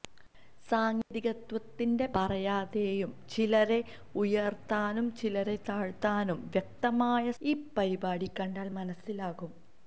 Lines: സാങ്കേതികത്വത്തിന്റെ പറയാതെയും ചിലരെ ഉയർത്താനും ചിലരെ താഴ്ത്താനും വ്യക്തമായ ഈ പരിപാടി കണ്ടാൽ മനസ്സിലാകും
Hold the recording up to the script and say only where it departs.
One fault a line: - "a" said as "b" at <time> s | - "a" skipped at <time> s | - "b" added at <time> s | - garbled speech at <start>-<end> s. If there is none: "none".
none